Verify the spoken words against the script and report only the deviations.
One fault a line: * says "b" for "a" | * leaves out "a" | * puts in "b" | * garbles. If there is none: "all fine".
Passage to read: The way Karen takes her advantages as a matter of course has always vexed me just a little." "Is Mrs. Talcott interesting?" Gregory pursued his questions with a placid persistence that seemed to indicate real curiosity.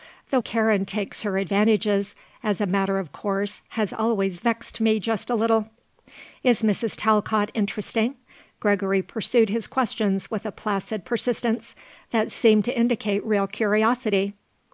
* leaves out "way"